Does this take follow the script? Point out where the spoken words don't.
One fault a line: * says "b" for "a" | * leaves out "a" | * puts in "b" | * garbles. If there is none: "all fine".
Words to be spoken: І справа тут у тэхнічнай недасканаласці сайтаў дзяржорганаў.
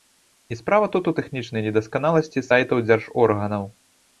all fine